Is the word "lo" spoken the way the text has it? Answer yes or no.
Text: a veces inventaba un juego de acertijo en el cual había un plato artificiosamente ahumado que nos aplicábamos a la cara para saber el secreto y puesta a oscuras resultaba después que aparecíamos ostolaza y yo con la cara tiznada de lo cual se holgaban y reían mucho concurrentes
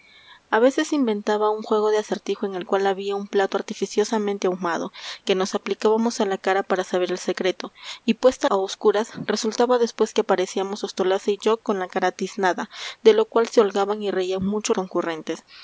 yes